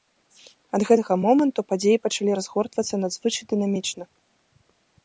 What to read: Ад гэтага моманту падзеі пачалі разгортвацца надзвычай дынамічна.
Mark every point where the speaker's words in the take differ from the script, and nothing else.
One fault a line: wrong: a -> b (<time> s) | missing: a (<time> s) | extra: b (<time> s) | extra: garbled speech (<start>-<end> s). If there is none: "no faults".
no faults